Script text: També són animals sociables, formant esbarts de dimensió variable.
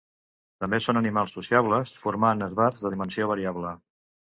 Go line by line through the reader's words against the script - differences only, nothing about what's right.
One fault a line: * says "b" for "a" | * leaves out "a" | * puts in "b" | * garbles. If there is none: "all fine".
all fine